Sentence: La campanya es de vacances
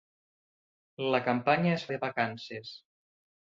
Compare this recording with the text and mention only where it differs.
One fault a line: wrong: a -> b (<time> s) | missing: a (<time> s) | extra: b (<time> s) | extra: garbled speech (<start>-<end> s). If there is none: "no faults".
no faults